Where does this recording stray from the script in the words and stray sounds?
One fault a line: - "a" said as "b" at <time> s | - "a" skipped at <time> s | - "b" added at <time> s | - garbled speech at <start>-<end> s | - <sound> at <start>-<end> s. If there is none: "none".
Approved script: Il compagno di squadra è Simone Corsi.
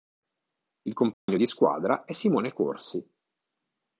- dropout at 1.1-1.3 s